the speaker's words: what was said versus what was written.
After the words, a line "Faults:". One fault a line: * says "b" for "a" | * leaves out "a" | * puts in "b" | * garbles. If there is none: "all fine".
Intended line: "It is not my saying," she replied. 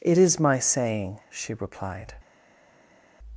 "It is my saying," she replied.
Faults:
* leaves out "not"